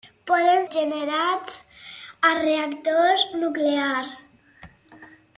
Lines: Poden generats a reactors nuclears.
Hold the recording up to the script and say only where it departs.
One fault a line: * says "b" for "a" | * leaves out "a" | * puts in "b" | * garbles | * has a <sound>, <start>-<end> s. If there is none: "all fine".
all fine